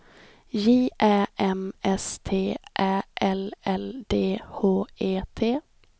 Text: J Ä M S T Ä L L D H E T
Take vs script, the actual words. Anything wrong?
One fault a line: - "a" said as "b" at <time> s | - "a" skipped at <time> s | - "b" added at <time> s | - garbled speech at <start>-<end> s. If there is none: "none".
none